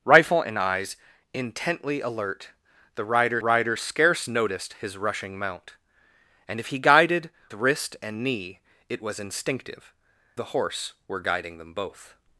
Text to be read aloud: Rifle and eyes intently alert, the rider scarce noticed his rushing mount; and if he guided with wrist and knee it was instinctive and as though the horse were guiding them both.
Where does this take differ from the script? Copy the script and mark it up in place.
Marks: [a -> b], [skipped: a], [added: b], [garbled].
Rifle and eyes intently alert, the rider [added: rider] scarce noticed his rushing mount; and if he guided [skipped: with] wrist and knee it was instinctive [skipped: and as though] the horse were guiding them both.